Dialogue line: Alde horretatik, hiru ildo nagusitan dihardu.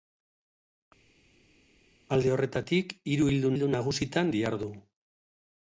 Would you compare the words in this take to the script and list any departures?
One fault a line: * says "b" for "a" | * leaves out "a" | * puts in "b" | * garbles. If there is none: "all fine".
* puts in "ildo"